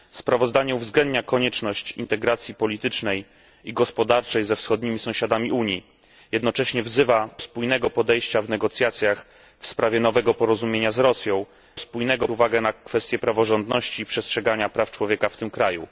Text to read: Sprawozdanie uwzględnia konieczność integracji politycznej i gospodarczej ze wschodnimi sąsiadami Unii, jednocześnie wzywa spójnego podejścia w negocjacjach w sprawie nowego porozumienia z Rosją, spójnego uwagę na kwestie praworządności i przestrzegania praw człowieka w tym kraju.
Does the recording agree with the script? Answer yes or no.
yes